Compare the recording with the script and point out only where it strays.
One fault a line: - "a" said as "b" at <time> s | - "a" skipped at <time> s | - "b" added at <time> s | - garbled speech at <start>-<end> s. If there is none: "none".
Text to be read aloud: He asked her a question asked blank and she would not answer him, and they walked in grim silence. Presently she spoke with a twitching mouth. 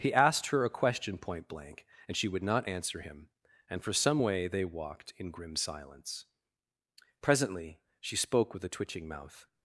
- "asked" said as "point" at 1.2 s
- "for some way" added at 3.8 s